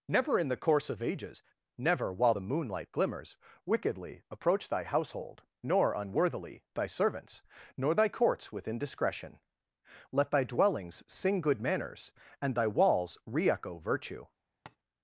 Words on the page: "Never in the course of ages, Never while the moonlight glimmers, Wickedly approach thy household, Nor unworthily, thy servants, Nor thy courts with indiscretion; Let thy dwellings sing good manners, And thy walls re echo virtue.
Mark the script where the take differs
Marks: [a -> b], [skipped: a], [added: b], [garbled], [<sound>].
"Never in the course of ages, Never while the moonlight glimmers, Wickedly approach thy household, Nor unworthily, thy servants, Nor thy courts with indiscretion; Let thy dwellings sing good manners, And thy walls re echo virtue. [tap]